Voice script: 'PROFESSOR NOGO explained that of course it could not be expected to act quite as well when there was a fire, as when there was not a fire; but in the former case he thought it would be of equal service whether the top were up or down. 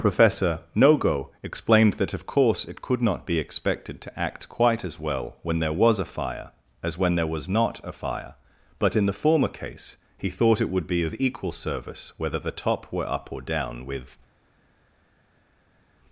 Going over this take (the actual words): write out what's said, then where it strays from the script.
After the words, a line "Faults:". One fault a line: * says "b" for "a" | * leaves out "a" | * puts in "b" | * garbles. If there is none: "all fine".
'PROFESSOR NOGO explained that of course it could not be expected to act quite as well when there was a fire, as when there was not a fire; but in the former case he thought it would be of equal service whether the top were up or down. With
Faults:
* puts in "With"